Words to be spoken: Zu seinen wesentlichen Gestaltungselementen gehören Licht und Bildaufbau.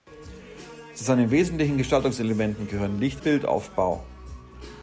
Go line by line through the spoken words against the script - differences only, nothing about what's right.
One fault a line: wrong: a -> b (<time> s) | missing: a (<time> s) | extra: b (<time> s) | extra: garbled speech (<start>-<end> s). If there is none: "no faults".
missing: und (3.2 s)